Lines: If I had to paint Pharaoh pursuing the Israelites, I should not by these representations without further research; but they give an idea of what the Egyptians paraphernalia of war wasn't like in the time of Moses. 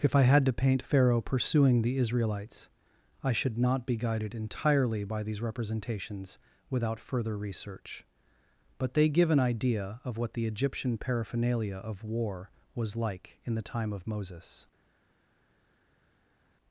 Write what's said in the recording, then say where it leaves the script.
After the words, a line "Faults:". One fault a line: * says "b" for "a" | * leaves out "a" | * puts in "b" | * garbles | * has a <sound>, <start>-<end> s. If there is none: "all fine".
If I had to paint Pharaoh pursuing the Israelites, I should not be guided entirely by these representations without further research; but they give an idea of what the Egyptian paraphernalia of war was like in the time of Moses.
Faults:
* puts in "be guided entirely"
* says "Egyptian" for "Egyptians"
* says "was" for "wasn't"